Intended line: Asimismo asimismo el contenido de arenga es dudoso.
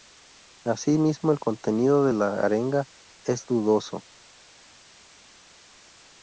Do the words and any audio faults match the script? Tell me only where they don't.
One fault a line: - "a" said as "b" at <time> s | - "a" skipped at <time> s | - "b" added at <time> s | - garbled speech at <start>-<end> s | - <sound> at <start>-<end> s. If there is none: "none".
- "asimismo" skipped at 1.3 s
- "la" added at 2.1 s